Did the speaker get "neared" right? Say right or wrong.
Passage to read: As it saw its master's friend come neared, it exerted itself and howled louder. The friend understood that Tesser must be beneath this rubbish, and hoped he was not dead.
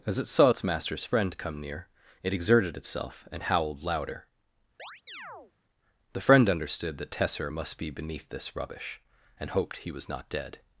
wrong